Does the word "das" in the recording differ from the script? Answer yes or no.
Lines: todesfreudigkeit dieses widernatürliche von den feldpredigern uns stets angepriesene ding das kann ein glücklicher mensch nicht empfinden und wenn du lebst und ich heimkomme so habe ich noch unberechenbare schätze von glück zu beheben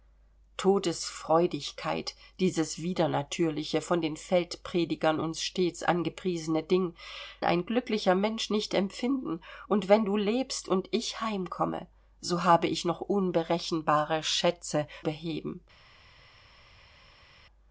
yes